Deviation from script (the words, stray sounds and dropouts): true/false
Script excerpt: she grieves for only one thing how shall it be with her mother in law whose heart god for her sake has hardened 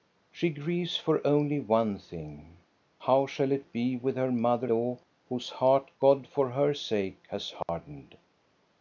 true